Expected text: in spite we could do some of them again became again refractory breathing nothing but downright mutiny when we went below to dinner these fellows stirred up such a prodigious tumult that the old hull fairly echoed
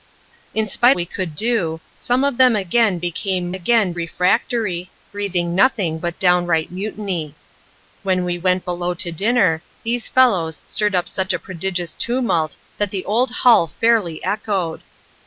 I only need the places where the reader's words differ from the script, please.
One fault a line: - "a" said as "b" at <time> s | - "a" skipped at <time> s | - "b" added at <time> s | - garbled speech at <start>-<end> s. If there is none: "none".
none